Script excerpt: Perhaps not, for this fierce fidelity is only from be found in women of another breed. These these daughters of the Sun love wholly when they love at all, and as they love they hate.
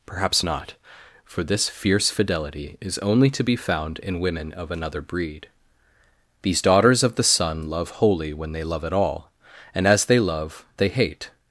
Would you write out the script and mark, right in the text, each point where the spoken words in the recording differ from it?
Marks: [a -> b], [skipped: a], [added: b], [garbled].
Perhaps not, for this fierce fidelity is only [from -> to] be found in women of another breed. These [skipped: these] daughters of the Sun love wholly when they love at all, and as they love they hate.